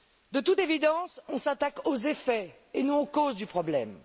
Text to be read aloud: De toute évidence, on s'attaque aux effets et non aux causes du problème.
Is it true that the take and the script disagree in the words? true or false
false